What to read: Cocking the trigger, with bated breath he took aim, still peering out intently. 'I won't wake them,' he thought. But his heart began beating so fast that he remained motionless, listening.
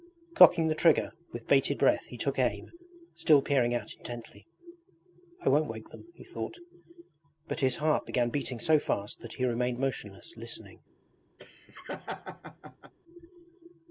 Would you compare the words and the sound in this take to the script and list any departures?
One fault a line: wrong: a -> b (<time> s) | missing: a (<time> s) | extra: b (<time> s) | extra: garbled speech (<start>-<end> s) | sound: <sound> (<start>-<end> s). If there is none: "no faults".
sound: laugh (11.4-12.9 s)